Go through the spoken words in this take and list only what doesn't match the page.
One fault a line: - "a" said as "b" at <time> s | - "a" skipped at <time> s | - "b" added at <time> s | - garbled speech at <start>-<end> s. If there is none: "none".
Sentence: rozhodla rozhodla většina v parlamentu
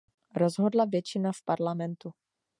- "rozhodla" skipped at 0.8 s